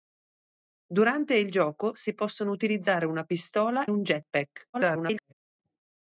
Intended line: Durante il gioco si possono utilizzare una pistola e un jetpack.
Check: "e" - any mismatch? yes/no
yes